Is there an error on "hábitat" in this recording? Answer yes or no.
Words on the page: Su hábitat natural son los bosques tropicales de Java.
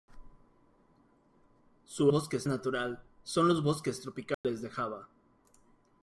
yes